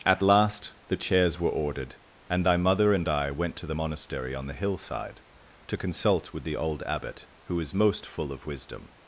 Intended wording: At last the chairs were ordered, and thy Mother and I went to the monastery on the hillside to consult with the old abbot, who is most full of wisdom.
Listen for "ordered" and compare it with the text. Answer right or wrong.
right